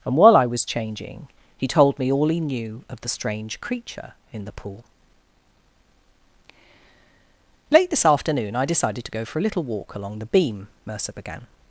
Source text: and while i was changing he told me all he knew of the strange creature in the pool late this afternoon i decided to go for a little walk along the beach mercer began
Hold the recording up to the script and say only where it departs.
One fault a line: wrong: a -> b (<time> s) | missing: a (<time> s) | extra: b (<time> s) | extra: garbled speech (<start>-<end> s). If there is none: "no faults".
wrong: beach -> beam (10.2 s)